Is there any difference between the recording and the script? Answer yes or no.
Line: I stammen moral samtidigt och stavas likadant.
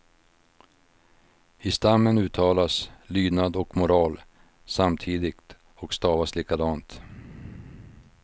yes